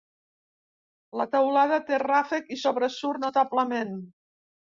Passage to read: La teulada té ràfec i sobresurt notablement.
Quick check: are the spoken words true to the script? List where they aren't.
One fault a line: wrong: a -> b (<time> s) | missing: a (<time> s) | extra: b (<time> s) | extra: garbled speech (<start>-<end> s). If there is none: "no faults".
no faults